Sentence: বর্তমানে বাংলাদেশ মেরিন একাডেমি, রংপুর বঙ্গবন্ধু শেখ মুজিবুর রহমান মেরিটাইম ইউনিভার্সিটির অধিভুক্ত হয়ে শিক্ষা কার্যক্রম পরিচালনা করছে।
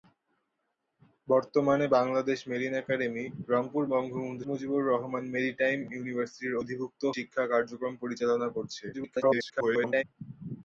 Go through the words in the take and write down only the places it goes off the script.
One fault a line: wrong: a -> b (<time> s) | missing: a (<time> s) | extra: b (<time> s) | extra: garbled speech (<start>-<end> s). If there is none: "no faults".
missing: শেখ (4.4 s)
missing: হয়ে (7.0 s)
extra: garbled speech (8.9-10.0 s)